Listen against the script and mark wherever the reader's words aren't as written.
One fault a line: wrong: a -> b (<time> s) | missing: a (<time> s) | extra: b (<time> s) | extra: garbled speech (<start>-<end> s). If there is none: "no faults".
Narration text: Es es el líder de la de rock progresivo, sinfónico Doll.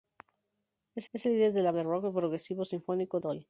no faults